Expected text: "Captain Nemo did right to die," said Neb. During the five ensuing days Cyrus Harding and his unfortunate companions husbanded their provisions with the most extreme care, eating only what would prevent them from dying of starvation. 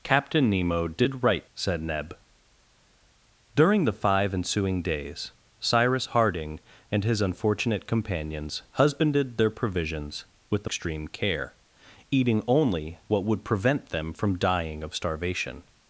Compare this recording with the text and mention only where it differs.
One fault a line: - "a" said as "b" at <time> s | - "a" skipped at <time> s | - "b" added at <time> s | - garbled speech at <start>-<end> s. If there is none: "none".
- "to die" skipped at 1.5 s
- "most" skipped at 10.7 s